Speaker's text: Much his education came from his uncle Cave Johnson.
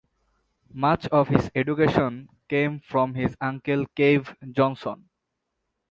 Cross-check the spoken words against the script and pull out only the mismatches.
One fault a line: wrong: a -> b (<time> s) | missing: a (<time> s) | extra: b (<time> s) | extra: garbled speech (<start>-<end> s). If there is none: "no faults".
extra: of (1.1 s)